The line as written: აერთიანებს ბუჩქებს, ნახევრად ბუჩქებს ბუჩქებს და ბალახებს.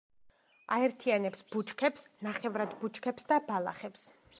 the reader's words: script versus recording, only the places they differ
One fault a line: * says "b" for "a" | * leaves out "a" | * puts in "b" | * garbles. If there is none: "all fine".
* leaves out "ბუჩქებს"